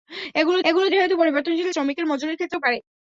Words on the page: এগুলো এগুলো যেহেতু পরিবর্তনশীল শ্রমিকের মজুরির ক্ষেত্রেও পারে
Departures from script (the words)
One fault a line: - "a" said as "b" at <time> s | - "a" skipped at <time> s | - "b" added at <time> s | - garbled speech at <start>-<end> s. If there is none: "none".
none